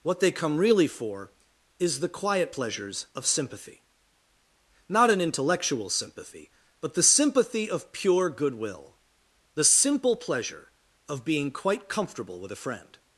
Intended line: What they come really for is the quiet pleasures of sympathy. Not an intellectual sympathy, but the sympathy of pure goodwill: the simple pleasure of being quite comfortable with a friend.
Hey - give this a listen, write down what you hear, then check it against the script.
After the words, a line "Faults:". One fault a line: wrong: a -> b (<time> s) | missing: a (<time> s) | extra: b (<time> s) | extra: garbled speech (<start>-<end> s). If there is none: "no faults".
What they come really for is the quiet pleasures of sympathy. Not an intellectual sympathy, but the sympathy of pure goodwill: the simple pleasure of being quite comfortable with a friend.
Faults:
no faults